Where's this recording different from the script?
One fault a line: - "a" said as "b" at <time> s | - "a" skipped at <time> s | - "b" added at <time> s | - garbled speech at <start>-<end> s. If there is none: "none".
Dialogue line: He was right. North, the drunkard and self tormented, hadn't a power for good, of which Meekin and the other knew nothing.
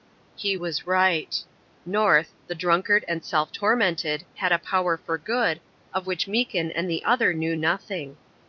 - "hadn't" said as "had" at 4.4 s